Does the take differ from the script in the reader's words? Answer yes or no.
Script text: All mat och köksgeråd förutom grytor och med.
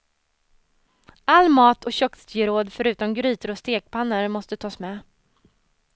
yes